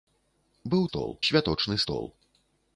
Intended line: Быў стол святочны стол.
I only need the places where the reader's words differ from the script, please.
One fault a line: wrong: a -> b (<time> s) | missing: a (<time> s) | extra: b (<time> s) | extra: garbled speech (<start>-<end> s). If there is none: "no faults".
no faults